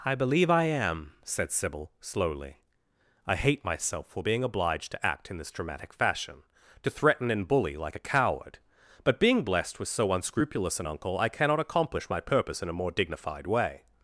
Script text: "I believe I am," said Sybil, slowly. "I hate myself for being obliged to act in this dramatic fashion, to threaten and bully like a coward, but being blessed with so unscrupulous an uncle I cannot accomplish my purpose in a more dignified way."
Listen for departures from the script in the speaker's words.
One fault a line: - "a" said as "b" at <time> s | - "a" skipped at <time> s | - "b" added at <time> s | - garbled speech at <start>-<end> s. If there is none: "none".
none